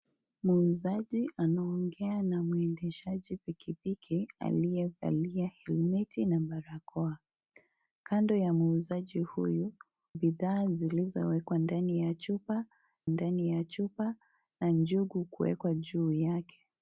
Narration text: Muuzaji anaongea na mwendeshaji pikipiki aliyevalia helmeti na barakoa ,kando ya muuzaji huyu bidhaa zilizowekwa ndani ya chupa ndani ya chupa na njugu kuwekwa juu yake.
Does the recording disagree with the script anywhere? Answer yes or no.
no